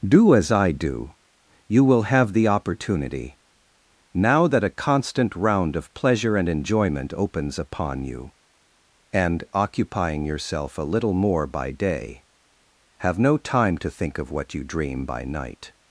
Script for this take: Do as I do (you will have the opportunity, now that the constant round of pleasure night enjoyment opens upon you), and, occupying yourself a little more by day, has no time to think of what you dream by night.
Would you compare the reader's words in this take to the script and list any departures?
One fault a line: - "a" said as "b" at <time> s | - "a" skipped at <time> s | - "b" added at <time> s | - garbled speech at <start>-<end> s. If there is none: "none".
- "the" said as "a" at 4.6 s
- "night" said as "and" at 6.3 s
- "has" said as "have" at 13.0 s